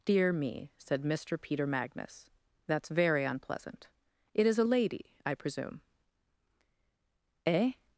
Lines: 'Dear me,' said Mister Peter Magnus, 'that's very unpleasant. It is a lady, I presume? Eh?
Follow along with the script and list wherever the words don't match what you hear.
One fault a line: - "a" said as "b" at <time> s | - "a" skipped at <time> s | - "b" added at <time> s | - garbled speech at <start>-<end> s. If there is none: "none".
none